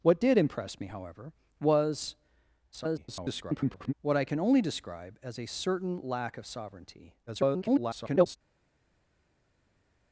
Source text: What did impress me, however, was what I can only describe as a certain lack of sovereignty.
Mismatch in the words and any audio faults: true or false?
true